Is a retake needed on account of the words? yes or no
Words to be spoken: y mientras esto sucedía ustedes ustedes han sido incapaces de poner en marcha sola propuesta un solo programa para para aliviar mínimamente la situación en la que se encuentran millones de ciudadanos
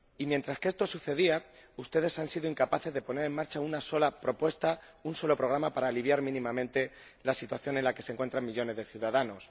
yes